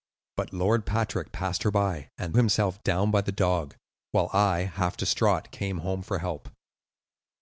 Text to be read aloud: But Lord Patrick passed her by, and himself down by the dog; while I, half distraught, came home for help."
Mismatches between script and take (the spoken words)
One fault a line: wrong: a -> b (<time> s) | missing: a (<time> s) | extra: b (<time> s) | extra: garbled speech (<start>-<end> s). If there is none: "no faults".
no faults